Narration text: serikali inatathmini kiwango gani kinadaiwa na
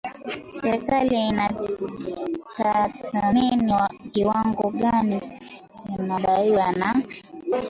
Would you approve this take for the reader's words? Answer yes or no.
yes